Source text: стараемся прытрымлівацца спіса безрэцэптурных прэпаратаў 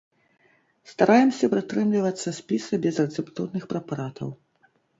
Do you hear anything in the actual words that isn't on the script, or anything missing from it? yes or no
no